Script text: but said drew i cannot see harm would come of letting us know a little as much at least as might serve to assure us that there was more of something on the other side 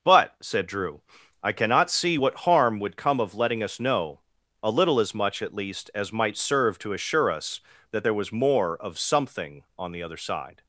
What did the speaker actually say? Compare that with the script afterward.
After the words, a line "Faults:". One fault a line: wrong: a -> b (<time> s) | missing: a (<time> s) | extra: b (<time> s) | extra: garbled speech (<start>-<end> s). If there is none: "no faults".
but said drew i cannot see what harm would come of letting us know a little as much at least as might serve to assure us that there was more of something on the other side
Faults:
extra: what (2.1 s)